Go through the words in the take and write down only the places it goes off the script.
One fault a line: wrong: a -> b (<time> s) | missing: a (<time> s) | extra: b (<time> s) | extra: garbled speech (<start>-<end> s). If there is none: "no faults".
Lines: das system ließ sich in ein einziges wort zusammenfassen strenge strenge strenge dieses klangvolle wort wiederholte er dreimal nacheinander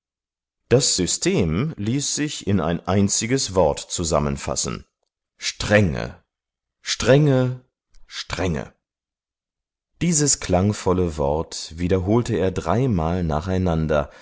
no faults